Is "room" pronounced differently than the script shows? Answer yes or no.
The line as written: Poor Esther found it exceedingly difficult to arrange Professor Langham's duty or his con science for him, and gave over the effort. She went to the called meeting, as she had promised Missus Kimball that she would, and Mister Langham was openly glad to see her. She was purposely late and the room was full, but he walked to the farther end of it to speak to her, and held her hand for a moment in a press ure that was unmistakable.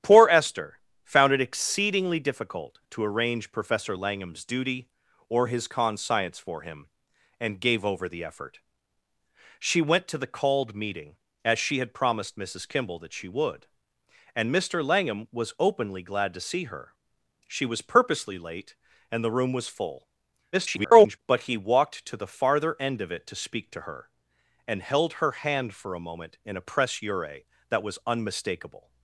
no